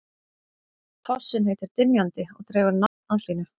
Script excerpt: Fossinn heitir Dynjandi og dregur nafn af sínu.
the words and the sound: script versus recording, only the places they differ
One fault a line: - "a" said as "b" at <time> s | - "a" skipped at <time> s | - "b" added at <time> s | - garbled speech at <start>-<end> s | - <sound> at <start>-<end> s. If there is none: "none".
- dropout at 2.9-3.0 s